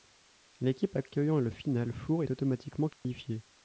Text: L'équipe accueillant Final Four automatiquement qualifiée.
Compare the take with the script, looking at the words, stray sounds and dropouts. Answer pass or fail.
fail